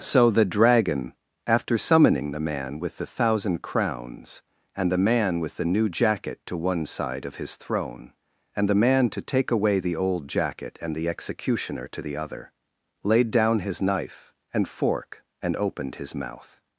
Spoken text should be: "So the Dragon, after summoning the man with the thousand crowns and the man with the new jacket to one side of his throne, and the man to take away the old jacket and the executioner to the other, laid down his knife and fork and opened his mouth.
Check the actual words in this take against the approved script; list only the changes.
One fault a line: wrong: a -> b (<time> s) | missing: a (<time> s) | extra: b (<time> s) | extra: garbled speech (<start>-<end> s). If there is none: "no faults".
no faults